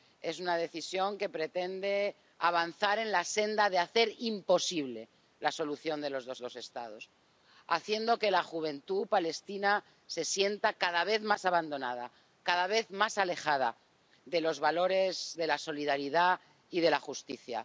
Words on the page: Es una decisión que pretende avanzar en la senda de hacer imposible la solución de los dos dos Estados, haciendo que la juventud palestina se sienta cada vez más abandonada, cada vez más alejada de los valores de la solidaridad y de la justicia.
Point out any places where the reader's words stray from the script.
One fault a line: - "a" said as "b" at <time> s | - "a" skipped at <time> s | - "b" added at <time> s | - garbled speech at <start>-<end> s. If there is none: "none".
none